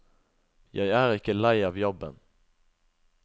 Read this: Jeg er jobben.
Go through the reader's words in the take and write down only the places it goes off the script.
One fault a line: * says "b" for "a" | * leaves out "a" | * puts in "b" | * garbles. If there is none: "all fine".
* puts in "ikke lei av"